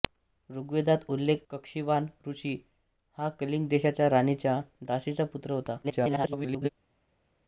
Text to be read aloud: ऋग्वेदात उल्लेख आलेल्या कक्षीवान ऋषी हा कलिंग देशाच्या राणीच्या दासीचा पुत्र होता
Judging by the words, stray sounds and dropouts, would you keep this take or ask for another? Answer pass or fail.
fail